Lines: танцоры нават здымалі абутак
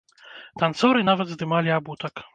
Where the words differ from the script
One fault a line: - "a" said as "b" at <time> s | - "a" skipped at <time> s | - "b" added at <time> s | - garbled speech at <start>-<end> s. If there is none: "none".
none